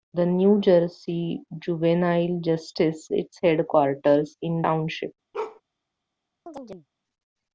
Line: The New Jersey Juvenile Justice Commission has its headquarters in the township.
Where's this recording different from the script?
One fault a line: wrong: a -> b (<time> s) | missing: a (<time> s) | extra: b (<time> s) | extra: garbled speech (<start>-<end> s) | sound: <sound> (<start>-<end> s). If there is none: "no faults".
missing: Commission has (3.1 s)
missing: the (4.6 s)
sound: bark (5.3-5.6 s)
sound: chirp (6.5-6.9 s)